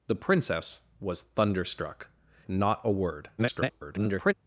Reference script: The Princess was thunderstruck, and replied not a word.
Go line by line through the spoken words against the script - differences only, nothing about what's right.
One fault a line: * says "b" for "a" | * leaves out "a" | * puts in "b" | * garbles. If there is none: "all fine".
* leaves out "and replied"
* garbles